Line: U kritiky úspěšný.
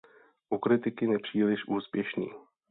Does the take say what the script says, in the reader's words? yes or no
no